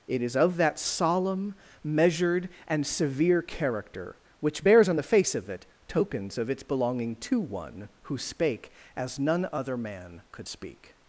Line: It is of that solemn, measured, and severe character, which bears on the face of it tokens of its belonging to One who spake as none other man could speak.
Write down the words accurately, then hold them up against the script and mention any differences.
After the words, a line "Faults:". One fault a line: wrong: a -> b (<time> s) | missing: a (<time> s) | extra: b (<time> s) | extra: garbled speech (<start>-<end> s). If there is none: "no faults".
It is of that solemn, measured, and severe character, which bears on the face of it tokens of its belonging to One who spake as none other man could speak.
Faults:
no faults